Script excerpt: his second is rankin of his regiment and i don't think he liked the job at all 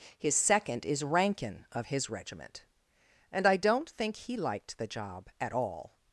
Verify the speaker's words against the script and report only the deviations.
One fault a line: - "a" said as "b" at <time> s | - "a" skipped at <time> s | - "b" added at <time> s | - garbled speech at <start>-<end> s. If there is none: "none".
none